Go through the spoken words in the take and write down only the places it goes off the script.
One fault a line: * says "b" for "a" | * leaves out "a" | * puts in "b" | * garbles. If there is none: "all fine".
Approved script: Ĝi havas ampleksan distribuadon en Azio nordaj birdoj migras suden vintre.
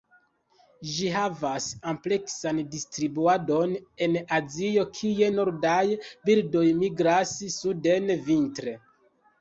* puts in "kie"